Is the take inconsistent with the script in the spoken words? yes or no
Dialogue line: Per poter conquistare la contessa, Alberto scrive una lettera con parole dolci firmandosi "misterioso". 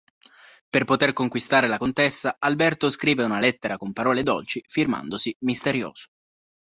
no